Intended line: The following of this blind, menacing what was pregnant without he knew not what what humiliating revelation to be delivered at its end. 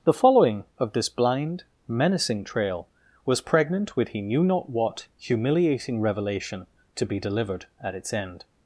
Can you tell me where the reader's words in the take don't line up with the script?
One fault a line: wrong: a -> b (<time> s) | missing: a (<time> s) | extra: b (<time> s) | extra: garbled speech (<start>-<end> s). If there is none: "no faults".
wrong: what -> trail (2.4 s)
wrong: without -> with (4.0 s)
missing: what (5.1 s)